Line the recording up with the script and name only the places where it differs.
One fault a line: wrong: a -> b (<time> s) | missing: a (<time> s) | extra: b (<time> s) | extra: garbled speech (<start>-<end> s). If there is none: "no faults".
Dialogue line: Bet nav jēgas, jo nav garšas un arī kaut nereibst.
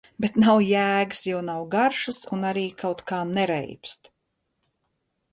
extra: kā (3.1 s)